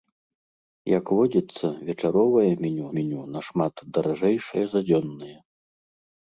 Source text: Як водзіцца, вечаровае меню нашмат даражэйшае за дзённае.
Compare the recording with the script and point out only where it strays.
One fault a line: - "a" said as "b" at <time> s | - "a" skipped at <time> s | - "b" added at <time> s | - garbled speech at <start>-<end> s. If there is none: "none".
- "меню" added at 3.0 s